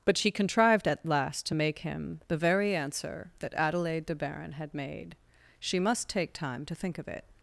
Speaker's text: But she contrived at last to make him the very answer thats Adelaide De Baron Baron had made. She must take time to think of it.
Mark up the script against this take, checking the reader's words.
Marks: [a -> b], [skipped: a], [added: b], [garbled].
But she contrived at last to make him the very answer [thats -> that] Adelaide De Baron [skipped: Baron] had made. She must take time to think of it.